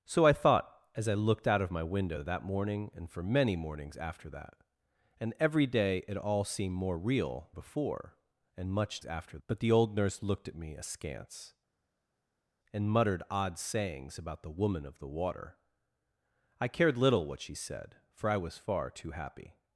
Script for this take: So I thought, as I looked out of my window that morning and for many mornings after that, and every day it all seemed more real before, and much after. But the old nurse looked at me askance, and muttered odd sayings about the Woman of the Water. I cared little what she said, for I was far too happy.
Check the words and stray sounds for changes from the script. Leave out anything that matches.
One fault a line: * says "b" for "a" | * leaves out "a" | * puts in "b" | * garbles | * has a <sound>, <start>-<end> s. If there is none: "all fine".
all fine